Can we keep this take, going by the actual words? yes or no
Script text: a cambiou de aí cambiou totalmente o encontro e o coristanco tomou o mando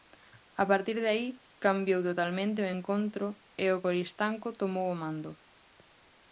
no